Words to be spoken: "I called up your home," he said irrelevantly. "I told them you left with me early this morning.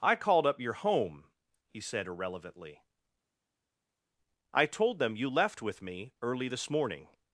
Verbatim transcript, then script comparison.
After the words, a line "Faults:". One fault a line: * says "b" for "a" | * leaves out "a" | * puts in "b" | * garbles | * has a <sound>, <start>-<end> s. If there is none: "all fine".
"I called up your home," he said irrelevantly. "I told them you left with me early this morning.
Faults:
all fine